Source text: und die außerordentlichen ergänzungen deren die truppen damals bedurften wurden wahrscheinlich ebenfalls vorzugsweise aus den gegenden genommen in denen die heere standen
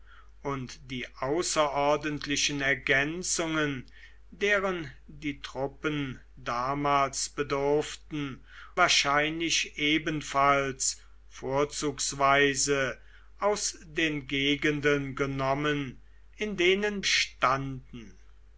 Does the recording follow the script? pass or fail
fail